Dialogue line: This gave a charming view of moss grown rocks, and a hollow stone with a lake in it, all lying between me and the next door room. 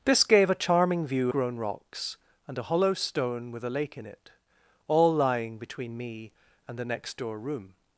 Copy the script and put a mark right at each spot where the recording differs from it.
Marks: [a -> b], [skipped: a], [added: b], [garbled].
This gave a charming view [skipped: of moss] grown rocks, and a hollow stone with a lake in it, all lying between me and the next door room.